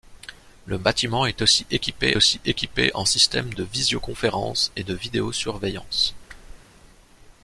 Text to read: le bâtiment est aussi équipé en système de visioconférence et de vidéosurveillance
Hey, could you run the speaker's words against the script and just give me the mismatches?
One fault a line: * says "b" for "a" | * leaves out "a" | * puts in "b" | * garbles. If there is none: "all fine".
* puts in "aussi équipé"